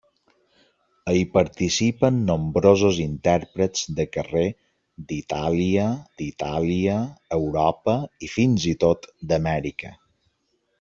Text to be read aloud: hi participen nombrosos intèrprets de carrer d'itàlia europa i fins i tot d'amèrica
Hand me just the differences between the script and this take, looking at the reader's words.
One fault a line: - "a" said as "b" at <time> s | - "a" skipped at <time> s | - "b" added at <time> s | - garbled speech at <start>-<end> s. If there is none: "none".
- "d'itàlia" added at 6.2 s